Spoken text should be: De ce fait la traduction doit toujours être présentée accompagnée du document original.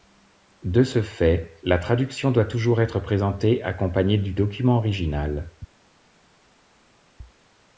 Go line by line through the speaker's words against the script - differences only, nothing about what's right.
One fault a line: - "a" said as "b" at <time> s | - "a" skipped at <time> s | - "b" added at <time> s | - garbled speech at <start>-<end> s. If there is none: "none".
none